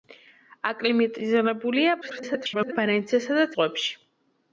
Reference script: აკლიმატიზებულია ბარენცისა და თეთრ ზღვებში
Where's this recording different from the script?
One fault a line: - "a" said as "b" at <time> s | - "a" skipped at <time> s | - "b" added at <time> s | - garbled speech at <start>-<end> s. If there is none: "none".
- garbled speech at 2.0-2.7 s
- "თეთრ" skipped at 3.5 s